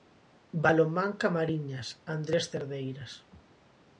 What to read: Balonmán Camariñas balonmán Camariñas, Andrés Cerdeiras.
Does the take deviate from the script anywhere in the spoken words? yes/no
yes